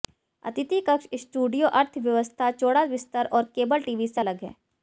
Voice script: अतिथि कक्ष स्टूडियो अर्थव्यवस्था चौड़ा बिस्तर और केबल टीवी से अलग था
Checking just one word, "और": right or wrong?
right